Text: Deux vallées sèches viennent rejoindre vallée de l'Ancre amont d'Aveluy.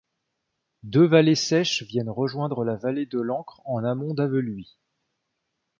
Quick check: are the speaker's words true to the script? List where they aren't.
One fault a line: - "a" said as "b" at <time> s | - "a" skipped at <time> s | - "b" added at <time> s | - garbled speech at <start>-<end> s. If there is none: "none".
- "la" added at 2.6 s
- "en" added at 3.6 s